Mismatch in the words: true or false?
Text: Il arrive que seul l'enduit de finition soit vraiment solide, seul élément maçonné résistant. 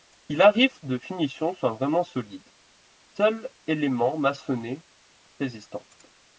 true